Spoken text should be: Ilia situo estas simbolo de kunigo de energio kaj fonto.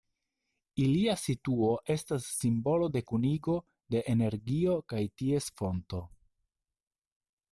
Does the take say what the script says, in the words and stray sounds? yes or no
no